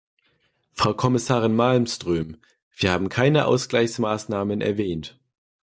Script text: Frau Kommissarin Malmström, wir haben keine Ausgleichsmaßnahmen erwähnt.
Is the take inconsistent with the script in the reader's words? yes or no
no